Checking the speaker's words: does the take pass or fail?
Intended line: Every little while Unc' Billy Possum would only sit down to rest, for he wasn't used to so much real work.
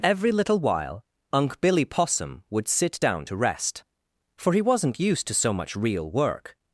fail